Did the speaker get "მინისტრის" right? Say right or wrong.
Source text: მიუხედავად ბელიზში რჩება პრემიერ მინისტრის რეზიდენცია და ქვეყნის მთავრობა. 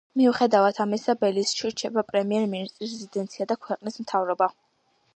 right